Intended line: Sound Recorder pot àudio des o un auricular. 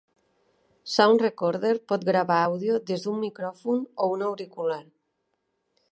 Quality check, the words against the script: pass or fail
fail